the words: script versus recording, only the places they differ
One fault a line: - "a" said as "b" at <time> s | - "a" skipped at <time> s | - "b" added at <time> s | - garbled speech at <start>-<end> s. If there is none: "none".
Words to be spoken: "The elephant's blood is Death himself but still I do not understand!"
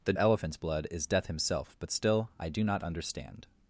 none